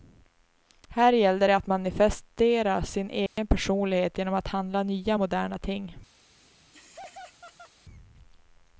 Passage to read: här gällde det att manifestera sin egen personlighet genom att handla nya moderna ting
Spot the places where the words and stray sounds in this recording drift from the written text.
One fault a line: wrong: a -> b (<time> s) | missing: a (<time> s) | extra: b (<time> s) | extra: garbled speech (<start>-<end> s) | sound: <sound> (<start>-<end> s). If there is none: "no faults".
sound: dropout (3.3-3.4 s)
sound: laugh (6.2-7.7 s)